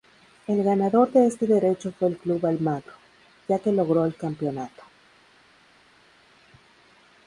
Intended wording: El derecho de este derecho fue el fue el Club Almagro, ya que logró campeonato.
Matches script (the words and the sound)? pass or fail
fail